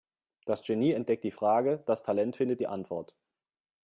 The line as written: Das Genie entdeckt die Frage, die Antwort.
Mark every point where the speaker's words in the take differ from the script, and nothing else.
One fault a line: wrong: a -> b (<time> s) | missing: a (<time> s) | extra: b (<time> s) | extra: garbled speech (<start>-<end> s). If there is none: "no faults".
extra: das Talent findet (1.9 s)